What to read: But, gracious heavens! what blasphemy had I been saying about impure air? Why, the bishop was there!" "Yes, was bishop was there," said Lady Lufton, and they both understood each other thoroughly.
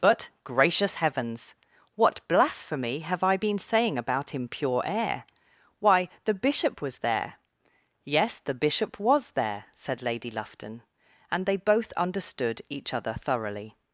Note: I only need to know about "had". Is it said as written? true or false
false